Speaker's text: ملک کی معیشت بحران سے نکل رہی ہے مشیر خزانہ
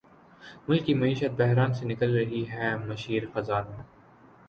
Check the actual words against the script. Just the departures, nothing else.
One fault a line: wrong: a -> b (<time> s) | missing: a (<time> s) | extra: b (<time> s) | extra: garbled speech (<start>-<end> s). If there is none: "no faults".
no faults